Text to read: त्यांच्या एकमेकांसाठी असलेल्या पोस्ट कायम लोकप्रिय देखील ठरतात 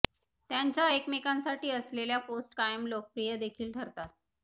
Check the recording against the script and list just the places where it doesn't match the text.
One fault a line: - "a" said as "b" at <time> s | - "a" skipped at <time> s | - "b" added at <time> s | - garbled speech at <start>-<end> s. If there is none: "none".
none